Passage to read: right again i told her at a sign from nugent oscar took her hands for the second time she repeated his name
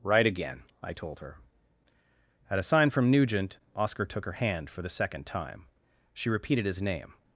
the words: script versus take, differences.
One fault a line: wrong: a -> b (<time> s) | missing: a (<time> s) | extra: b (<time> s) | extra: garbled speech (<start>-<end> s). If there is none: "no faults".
wrong: hands -> hand (4.3 s)